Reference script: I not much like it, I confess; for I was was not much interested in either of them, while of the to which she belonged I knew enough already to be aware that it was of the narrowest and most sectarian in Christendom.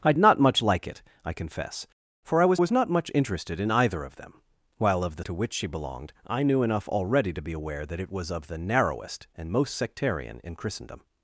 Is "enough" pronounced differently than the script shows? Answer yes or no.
no